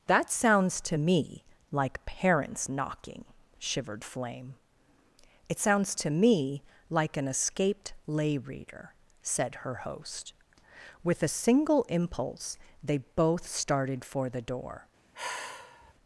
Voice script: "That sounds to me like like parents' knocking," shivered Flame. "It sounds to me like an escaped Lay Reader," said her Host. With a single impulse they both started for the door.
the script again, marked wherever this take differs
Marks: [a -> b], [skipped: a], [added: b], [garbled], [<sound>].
"That sounds to me like [skipped: like] parents' knocking," shivered Flame. "It sounds to me like an escaped Lay Reader," said her Host. With a single impulse they both started for the door. [sigh]